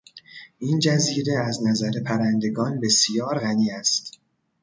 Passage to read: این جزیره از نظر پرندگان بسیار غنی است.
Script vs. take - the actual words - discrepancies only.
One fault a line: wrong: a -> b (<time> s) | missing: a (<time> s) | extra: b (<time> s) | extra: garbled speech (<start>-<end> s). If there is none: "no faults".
no faults